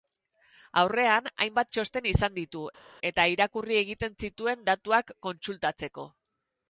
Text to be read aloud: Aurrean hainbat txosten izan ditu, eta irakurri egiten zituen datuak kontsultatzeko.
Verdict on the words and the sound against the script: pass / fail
pass